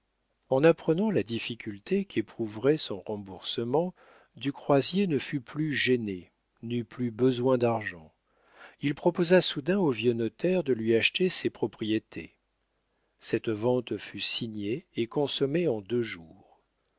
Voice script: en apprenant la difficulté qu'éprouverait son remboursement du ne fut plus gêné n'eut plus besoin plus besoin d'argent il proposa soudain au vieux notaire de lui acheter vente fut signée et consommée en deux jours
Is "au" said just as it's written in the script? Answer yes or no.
yes